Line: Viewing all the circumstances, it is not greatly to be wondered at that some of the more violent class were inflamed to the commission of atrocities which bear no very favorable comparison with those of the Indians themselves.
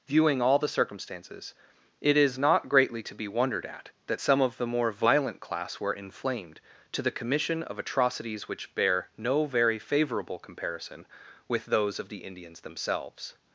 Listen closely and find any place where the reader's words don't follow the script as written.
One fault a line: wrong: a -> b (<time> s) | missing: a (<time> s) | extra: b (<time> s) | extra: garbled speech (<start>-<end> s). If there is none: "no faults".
no faults